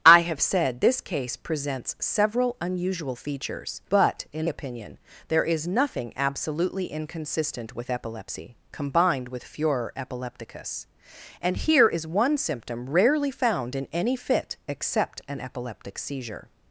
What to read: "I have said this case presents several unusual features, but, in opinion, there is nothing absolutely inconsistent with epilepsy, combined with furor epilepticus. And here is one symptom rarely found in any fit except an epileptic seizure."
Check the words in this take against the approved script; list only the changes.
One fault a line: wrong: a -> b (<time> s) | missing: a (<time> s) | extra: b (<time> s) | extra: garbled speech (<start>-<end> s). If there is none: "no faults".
no faults